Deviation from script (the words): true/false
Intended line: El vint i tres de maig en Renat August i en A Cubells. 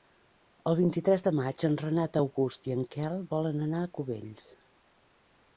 true